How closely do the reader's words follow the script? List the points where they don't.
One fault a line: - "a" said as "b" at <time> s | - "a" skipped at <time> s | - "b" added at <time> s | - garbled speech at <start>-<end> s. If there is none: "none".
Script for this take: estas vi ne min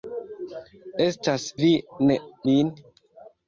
none